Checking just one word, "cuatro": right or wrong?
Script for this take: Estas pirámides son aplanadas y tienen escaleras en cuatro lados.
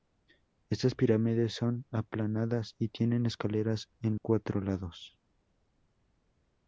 right